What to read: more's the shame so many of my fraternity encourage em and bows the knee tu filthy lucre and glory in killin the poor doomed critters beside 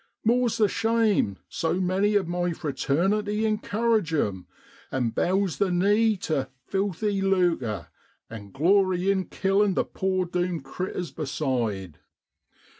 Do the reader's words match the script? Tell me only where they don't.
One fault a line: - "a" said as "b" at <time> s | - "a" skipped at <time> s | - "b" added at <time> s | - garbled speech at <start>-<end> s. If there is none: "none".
none